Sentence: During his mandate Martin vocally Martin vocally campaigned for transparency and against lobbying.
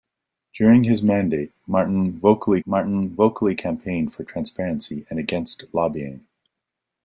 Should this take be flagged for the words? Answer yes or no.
no